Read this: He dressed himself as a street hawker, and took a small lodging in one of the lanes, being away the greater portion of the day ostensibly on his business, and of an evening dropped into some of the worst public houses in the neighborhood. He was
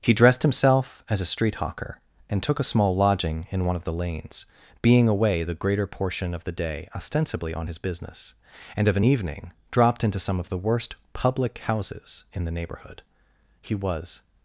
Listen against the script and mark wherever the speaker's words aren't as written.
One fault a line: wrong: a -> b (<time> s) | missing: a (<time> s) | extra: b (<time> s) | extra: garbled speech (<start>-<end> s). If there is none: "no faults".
no faults